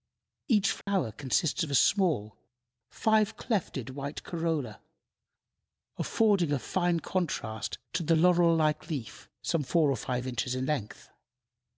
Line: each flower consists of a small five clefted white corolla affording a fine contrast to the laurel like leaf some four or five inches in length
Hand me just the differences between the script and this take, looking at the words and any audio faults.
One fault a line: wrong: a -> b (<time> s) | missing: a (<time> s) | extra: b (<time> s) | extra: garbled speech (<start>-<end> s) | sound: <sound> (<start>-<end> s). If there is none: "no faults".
sound: dropout (0.8-0.9 s)